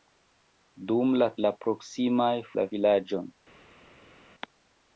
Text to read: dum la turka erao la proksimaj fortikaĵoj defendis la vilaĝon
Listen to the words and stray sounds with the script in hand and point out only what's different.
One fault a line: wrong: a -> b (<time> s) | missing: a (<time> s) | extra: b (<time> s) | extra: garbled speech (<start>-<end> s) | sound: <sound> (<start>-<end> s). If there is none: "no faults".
missing: turka erao (1.3 s)
missing: fortikaĵoj defendis (2.3 s)